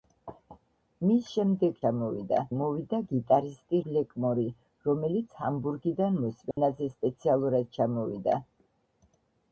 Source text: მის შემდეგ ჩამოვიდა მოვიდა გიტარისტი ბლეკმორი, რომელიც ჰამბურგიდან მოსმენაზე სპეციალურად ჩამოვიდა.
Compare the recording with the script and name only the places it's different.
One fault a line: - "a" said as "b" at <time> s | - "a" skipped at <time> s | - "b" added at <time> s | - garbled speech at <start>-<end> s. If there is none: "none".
none